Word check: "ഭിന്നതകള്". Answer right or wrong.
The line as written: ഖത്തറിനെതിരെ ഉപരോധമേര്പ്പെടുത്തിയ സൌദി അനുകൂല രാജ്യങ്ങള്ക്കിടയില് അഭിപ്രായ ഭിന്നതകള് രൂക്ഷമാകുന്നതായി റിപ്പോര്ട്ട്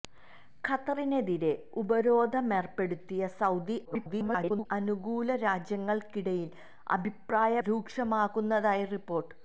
wrong